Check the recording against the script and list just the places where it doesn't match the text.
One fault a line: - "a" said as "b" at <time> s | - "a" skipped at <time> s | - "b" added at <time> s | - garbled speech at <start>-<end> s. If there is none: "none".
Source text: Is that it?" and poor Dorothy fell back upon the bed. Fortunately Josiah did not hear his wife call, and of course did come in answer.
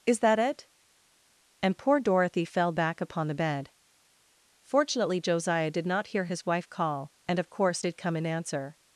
none